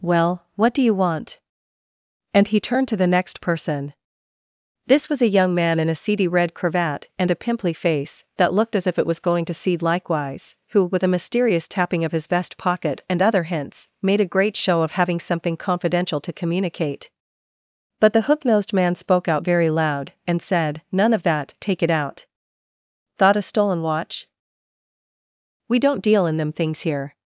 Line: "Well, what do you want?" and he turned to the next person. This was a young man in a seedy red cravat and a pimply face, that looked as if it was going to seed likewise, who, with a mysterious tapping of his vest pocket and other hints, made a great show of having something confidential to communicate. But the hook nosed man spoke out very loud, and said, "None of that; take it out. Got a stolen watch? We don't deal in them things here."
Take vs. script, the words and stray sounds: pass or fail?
fail